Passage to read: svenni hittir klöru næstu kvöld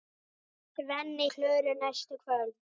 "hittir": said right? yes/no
no